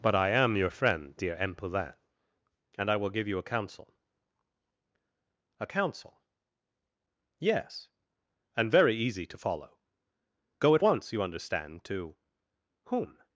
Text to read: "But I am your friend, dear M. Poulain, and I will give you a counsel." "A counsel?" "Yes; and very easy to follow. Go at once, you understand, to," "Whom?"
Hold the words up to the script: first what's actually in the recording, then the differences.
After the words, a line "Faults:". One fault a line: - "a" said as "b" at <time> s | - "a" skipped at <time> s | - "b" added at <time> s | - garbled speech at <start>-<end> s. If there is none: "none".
"But I am your friend, dear M. Poulain, and I will give you a counsel." "A counsel?" "Yes; and very easy to follow. Go at once, you understand, to," "Whom?"
Faults:
none